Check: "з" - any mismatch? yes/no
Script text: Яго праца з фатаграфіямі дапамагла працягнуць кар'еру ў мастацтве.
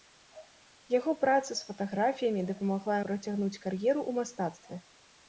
no